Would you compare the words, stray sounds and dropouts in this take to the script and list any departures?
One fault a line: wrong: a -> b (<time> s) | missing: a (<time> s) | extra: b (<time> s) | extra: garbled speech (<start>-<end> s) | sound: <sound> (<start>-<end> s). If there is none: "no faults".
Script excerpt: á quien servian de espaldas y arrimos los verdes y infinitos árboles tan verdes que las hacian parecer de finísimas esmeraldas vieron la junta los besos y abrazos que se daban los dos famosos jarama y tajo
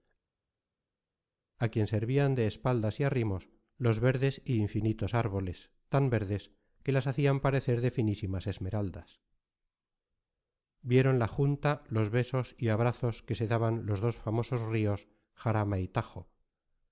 extra: rios (14.7 s)